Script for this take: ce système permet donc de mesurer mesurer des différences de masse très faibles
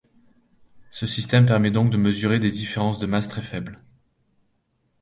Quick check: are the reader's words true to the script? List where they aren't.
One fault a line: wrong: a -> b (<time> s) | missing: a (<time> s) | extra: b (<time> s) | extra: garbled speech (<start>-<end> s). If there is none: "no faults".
missing: mesurer (2.4 s)